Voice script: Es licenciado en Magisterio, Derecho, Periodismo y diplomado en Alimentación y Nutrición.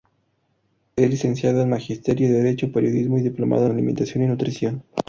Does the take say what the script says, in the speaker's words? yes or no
no